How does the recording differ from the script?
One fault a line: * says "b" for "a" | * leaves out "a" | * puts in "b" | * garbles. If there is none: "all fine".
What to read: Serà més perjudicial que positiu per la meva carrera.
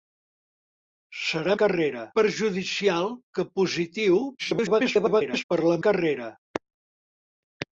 * says "carrera" for "més"
* garbles
* leaves out "meva"